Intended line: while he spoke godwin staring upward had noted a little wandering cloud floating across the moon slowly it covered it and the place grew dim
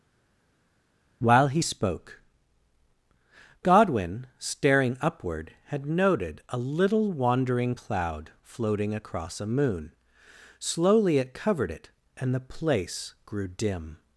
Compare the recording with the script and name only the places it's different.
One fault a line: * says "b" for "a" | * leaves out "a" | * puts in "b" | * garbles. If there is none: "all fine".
* says "a" for "the"